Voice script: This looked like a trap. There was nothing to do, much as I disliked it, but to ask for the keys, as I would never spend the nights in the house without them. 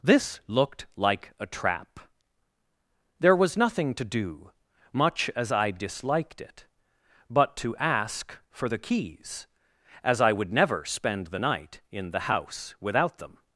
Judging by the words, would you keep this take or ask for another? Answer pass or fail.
fail